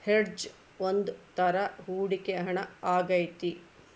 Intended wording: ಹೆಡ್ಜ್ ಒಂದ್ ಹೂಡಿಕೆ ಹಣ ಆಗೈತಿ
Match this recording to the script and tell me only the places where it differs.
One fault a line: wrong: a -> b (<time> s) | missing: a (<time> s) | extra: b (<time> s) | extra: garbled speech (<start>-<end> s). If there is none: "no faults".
extra: ತರ (1.4 s)